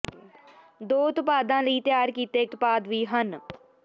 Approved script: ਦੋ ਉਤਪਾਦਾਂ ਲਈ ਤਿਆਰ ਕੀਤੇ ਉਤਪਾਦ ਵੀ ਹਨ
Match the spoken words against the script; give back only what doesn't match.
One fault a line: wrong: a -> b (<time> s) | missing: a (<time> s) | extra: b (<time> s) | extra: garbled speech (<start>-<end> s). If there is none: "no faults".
no faults